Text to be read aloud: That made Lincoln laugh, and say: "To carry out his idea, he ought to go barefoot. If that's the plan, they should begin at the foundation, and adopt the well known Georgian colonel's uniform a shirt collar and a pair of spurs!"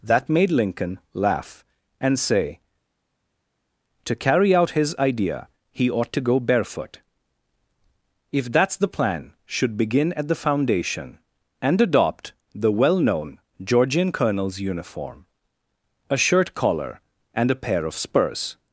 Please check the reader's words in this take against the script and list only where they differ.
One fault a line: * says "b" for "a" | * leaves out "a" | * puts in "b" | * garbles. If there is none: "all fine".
* leaves out "they"